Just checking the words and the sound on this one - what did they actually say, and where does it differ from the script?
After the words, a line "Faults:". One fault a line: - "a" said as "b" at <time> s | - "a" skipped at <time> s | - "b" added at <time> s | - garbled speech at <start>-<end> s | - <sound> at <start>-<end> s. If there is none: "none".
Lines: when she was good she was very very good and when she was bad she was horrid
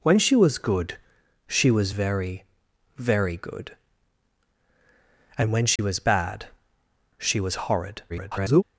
when she was good she was very very good and when she was bad she was horrid [garbled]
Faults:
- dropout at 5.8-5.8 s
- garbled speech at 8.1-8.6 s